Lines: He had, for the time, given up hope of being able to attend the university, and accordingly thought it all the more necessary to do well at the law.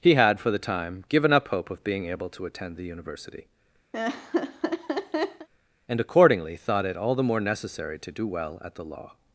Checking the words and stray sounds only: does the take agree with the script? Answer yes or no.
no